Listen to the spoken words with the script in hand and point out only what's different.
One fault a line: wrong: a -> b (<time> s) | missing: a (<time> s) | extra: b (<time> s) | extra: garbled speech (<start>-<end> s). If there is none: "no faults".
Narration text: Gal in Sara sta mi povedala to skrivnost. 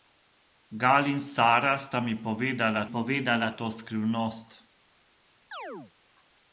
extra: povedala (2.8 s)